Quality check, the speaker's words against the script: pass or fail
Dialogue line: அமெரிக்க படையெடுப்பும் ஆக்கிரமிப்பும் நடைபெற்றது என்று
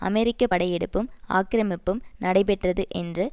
pass